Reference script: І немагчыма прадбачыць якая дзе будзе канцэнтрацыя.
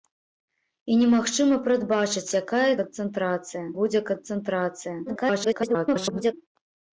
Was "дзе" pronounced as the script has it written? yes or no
no